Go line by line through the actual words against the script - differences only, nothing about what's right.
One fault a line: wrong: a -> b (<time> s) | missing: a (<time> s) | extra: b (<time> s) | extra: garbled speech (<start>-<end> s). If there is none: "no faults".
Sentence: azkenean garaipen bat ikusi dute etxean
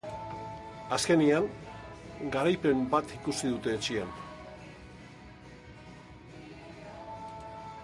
no faults